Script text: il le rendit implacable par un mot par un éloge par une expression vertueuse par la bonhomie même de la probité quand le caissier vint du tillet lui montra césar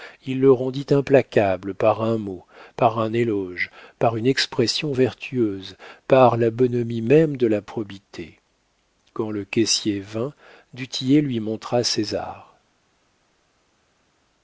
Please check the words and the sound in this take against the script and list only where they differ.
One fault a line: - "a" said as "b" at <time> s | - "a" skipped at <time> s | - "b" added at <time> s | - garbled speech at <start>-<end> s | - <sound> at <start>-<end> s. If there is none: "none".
none